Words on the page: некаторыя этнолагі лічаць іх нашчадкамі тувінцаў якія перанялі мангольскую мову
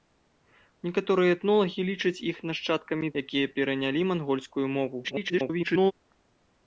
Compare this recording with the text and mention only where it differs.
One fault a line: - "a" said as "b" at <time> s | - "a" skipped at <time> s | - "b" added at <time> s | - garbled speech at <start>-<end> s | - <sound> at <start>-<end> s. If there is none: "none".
- "тувінцаў" skipped at 3.1 s
- garbled speech at 5.0-5.9 s